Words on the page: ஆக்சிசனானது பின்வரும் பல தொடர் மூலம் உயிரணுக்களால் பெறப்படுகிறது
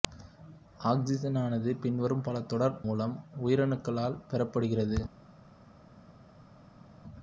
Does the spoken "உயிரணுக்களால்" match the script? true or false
true